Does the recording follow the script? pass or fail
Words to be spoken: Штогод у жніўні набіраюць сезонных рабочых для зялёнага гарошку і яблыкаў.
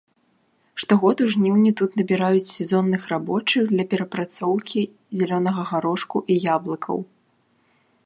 fail